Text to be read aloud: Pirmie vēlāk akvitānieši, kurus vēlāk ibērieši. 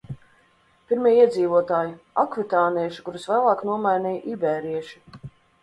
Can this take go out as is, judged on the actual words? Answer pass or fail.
fail